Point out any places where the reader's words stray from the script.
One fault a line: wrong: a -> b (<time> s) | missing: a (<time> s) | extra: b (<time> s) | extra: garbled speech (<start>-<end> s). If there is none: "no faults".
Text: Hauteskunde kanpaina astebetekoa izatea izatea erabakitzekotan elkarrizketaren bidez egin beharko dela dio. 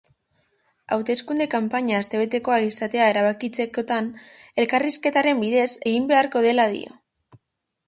missing: izatea (3.1 s)